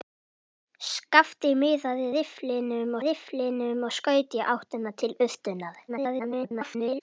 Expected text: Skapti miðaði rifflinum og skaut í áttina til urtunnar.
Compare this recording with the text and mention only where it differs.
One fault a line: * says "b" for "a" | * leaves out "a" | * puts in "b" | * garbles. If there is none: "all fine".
* puts in "rifflinum"
* garbles